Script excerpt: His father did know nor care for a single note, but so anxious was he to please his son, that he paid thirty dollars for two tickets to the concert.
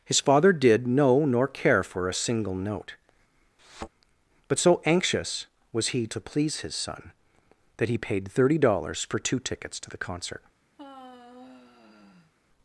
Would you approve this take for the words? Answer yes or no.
yes